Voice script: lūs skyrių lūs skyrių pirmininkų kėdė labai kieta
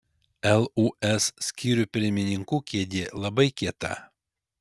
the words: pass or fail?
fail